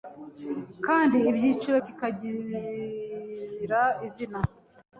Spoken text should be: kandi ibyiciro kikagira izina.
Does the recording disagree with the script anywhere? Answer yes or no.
no